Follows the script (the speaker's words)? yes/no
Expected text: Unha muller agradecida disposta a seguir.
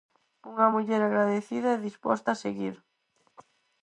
no